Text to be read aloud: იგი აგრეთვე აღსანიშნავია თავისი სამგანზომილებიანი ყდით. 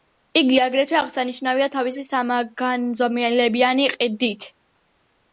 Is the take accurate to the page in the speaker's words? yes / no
yes